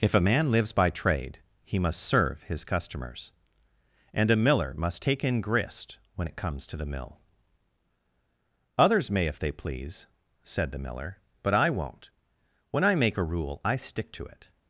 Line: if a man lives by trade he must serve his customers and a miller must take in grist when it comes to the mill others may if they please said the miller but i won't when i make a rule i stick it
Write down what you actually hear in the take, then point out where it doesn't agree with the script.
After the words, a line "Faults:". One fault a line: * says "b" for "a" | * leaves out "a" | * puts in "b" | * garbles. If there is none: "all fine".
if a man lives by trade he must serve his customers and a miller must take in grist when it comes to the mill others may if they please said the miller but i won't when i make a rule i stick to it
Faults:
* puts in "to"